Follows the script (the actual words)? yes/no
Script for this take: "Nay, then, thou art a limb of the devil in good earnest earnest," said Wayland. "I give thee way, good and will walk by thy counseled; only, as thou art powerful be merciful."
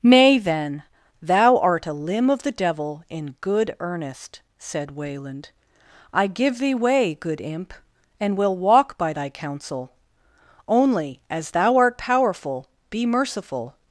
no